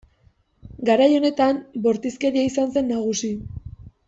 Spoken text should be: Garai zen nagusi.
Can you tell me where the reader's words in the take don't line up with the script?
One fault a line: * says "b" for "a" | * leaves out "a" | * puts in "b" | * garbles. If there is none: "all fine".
* puts in "honetan bortizkeria izan"